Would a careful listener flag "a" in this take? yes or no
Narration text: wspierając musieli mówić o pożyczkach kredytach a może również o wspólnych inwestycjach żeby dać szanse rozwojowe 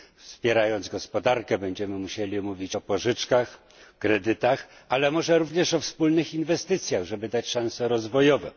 yes